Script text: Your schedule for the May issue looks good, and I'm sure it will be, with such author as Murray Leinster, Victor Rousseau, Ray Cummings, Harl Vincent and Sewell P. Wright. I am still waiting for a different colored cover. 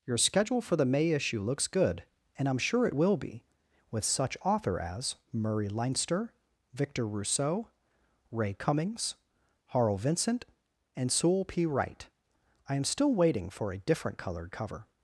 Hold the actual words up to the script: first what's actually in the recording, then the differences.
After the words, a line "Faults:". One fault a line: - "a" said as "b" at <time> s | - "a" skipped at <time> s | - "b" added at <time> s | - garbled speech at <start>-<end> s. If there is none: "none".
Your schedule for the May issue looks good, and I'm sure it will be, with such author as Murray Leinster, Victor Rousseau, Ray Cummings, Harl Vincent and Sewell P. Wright. I am still waiting for a different colored cover.
Faults:
none